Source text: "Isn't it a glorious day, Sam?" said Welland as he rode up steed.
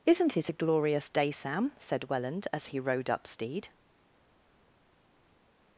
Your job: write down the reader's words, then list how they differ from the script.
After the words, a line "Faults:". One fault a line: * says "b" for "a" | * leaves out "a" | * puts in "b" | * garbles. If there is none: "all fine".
"Isn't it a glorious day, Sam?" said Welland as he rode up steed.
Faults:
all fine